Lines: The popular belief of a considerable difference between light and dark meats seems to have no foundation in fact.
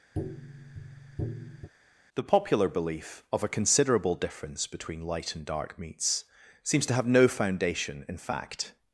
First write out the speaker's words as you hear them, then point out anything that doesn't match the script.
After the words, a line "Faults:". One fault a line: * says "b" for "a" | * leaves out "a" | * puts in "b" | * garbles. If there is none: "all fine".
The popular belief of a considerable difference between light and dark meats seems to have no foundation in fact.
Faults:
all fine